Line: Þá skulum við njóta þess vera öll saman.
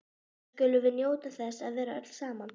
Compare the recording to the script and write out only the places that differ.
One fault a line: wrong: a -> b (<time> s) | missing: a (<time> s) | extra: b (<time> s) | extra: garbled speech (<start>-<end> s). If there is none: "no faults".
extra: að (1.7 s)